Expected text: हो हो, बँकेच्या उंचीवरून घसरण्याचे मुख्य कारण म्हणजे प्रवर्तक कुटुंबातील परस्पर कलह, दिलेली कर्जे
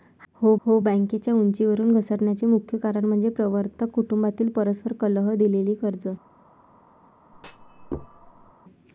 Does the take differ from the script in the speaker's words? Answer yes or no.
no